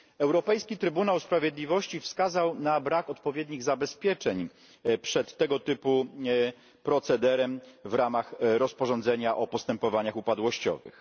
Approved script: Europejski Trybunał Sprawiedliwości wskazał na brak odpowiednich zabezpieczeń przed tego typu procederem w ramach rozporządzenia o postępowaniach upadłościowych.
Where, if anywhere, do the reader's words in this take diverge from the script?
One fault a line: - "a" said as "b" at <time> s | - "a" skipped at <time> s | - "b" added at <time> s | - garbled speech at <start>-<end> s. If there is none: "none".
none